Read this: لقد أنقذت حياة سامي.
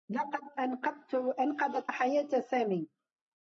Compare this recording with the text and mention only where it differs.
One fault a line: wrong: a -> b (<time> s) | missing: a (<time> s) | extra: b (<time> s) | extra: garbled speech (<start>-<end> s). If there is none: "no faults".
no faults